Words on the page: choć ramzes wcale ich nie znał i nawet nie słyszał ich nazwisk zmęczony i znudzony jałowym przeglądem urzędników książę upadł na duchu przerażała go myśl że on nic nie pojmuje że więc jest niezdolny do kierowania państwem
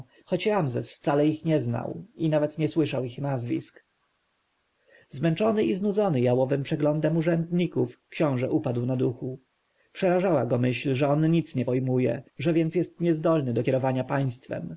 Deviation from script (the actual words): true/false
false